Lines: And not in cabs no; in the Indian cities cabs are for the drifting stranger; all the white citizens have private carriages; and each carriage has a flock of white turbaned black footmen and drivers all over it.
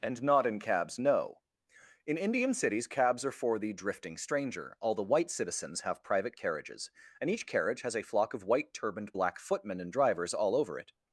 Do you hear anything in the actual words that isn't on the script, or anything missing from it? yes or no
yes